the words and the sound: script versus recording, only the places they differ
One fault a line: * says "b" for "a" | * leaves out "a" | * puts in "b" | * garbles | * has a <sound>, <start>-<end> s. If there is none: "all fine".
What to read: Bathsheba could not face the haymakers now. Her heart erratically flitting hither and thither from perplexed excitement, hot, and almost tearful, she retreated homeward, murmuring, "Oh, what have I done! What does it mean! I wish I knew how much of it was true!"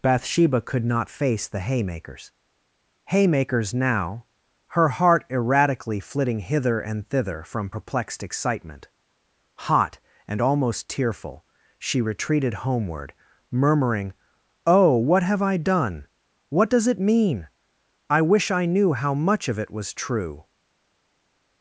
* puts in "haymakers"